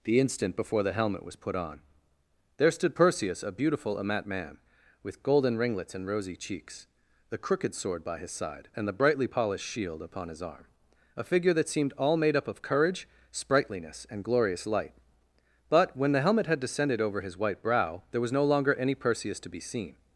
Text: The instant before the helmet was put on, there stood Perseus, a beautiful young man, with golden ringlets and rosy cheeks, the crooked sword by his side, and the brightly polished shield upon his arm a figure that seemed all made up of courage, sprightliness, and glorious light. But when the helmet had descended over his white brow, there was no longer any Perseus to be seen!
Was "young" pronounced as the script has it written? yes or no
no